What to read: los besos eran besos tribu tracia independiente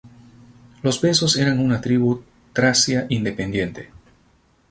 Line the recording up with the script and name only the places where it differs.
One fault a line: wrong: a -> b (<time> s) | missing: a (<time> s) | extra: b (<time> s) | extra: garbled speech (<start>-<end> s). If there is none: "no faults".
wrong: besos -> una (1.6 s)